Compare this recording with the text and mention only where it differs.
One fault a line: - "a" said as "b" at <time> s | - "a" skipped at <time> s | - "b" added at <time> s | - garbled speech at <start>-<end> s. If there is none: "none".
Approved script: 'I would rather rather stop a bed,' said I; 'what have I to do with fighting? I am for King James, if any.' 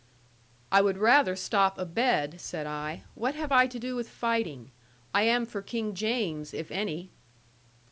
- "rather" skipped at 1.4 s